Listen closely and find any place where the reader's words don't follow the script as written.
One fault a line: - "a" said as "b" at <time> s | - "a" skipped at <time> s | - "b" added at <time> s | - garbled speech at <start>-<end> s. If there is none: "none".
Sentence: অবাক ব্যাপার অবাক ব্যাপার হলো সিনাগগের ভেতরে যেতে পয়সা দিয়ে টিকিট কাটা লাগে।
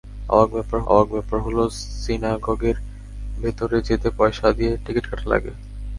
none